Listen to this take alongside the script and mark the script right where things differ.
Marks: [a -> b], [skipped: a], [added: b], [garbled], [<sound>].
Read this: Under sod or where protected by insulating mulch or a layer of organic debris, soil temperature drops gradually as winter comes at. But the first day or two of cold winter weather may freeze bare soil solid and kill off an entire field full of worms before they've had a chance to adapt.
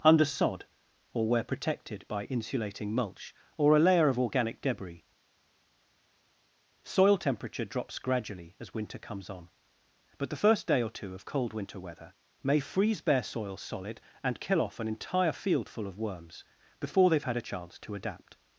Under sod or where protected by insulating mulch or a layer of organic debris, soil temperature drops gradually as winter comes [at. -> on] But the first day or two of cold winter weather may freeze bare soil solid and kill off an entire field full of worms before they've had a chance to adapt.